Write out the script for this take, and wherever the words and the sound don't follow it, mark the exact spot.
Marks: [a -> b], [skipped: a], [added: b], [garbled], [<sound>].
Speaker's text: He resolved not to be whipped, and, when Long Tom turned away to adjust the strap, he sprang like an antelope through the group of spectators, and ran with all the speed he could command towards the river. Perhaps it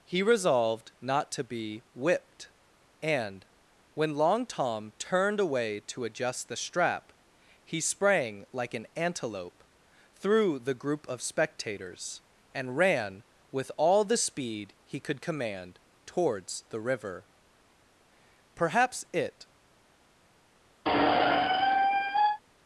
He resolved not to be whipped, and, when Long Tom turned away to adjust the strap, he sprang like an antelope through the group of spectators, and ran with all the speed he could command towards the river. Perhaps it [squeak]